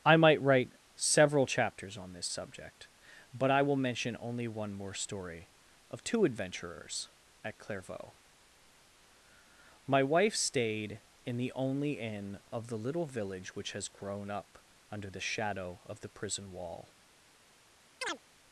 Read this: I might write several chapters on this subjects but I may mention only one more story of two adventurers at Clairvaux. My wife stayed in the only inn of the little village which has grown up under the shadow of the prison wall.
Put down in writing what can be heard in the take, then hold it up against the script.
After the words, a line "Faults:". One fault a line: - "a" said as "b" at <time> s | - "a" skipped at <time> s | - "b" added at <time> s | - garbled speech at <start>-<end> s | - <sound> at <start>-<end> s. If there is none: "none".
I might write several chapters on this subject but I will mention only one more story of two adventurers at Clairvaux. My wife stayed in the only inn of the little village which has grown up under the shadow of the prison wall.
Faults:
- "subjects" said as "subject" at 2.3 s
- "may" said as "will" at 3.6 s
- chirp at 18.0-18.2 s